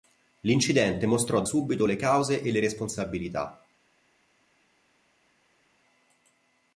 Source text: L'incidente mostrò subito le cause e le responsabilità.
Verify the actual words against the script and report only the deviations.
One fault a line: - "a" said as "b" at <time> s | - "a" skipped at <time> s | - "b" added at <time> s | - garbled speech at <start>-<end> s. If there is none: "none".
none